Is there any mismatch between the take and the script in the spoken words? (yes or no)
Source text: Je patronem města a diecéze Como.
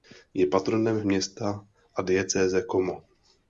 no